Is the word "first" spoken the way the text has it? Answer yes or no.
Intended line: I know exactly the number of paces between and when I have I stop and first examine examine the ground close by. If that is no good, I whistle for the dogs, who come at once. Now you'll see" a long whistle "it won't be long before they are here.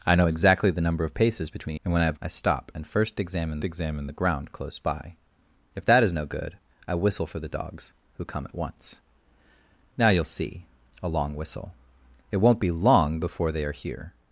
yes